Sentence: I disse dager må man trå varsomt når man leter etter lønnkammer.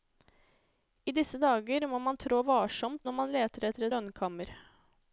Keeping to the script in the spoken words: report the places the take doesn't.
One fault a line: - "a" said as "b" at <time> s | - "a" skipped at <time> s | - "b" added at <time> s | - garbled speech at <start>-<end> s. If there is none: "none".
none